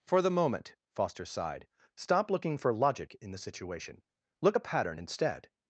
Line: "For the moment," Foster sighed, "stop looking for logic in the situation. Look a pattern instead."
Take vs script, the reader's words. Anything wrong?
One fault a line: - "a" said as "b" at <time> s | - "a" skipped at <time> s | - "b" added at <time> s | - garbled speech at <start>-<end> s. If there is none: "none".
none